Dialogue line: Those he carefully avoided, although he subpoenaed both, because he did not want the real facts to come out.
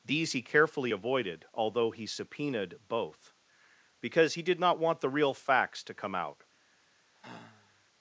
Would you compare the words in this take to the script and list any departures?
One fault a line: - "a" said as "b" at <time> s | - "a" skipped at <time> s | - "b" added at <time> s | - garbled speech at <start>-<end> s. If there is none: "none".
- "Those" said as "These" at 0.0 s